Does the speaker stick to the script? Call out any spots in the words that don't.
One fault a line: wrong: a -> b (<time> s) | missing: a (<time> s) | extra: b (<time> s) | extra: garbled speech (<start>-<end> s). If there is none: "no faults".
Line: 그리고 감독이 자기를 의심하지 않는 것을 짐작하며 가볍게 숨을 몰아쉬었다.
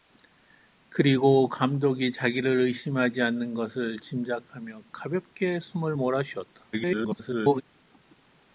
extra: garbled speech (6.7-7.6 s)